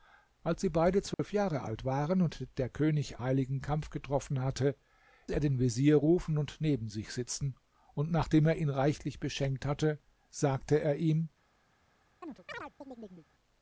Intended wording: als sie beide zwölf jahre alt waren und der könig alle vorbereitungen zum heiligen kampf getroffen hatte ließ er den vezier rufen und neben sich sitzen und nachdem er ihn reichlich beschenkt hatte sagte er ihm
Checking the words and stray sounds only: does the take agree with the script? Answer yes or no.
no